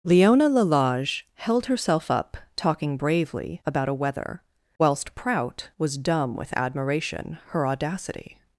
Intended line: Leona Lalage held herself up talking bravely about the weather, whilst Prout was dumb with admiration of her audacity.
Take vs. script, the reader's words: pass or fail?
fail